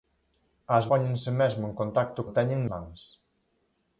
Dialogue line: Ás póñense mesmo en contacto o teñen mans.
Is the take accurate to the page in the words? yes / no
yes